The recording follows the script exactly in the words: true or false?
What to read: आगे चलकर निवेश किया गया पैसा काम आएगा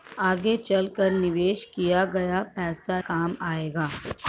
true